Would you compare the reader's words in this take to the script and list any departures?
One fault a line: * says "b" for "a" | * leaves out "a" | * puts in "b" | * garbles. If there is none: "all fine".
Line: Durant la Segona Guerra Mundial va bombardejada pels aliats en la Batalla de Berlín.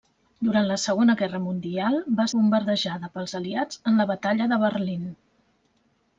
all fine